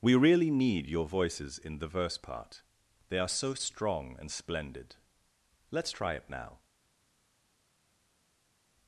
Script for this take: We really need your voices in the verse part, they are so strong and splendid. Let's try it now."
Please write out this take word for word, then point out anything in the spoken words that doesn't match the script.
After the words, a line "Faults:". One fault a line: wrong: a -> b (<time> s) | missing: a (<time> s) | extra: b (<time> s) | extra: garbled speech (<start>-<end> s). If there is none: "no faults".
We really need your voices in the verse part, they are so strong and splendid. Let's try it now."
Faults:
no faults